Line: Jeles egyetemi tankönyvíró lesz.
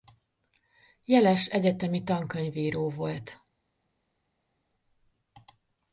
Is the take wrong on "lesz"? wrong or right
wrong